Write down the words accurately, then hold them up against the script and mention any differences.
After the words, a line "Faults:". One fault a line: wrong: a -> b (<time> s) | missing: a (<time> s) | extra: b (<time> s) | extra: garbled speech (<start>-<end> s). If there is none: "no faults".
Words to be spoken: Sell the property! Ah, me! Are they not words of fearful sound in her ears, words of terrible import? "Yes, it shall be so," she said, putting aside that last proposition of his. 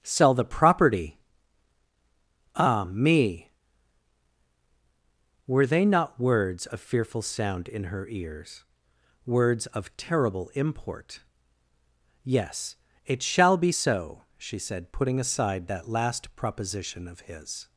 Sell the property! Ah, me! Were they not words of fearful sound in her ears, words of terrible import? "Yes, it shall be so," she said, putting aside that last proposition of his.
Faults:
wrong: Are -> Were (5.5 s)